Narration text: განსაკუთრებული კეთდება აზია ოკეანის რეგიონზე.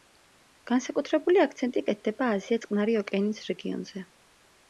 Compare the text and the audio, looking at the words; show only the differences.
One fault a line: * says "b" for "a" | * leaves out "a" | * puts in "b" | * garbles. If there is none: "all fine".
* puts in "აქცენტი"
* puts in "წყნარი"